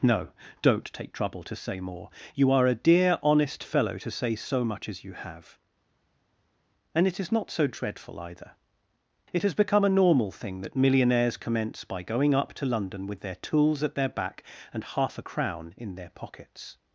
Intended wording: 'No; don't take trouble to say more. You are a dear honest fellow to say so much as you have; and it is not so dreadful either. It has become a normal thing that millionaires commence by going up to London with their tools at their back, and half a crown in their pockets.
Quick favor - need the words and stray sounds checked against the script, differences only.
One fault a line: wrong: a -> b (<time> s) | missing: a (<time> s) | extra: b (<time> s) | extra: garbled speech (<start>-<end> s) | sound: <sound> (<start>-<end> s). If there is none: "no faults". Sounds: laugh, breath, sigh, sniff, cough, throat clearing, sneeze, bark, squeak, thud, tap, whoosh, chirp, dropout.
no faults